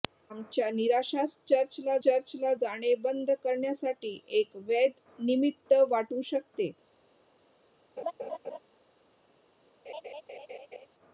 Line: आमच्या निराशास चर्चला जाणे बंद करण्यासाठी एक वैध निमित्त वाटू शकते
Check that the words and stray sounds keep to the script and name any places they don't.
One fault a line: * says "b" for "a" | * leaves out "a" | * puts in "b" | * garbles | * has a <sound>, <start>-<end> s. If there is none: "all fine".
* puts in "चर्चला"
* has a laugh, 8.0-8.6 s
* has a laugh, 9.9-10.9 s